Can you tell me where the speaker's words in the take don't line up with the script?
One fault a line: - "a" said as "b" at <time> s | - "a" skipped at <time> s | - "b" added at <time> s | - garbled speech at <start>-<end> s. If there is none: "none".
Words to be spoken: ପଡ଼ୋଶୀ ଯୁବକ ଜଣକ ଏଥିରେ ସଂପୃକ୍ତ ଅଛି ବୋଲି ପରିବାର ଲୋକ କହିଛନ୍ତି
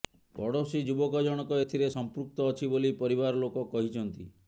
none